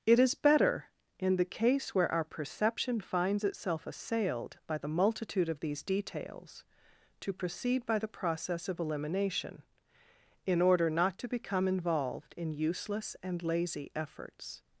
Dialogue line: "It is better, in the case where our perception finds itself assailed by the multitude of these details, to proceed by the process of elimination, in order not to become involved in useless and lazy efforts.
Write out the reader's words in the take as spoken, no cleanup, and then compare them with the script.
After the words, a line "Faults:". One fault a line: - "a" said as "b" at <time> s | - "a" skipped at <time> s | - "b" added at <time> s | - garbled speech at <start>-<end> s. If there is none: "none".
"It is better, in the case where our perception finds itself assailed by the multitude of these details, to proceed by the process of elimination, in order not to become involved in useless and lazy efforts.
Faults:
none